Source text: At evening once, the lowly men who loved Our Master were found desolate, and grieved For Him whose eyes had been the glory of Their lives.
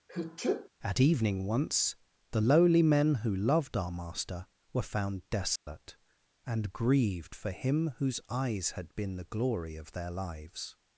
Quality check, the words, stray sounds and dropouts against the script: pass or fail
fail